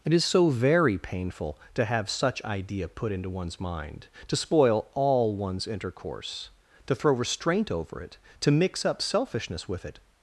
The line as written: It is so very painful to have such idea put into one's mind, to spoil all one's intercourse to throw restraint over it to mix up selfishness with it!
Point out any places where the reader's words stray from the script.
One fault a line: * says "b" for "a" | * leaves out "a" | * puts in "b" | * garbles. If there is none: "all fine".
all fine